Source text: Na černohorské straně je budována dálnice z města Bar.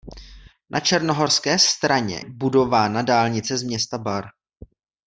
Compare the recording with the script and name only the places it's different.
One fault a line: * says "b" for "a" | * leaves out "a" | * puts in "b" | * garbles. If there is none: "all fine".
* leaves out "je"